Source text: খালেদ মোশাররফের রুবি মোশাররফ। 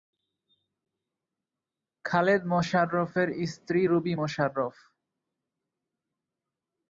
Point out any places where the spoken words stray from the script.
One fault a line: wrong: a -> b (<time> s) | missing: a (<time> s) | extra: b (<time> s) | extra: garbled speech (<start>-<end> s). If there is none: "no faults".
extra: স্ত্রী (3.5 s)